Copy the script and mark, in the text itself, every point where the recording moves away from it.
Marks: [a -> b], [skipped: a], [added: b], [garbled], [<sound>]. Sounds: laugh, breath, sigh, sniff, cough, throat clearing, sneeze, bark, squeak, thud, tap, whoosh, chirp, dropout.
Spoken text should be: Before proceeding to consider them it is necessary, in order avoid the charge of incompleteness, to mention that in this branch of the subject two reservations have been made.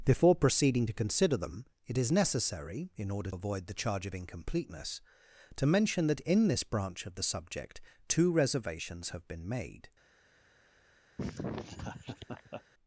Before proceeding to consider them it is necessary, in order avoid the charge of incompleteness, to mention that in this branch of the subject two reservations have been made. [laugh]